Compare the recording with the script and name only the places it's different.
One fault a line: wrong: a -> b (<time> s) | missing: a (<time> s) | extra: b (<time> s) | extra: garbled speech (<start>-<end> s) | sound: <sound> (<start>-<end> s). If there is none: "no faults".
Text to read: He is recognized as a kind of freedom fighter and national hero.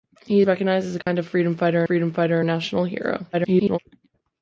missing: is (0.4 s)
sound: dropout (1.0-1.1 s)
extra: freedom fighter (1.8 s)
extra: garbled speech (3.3-3.8 s)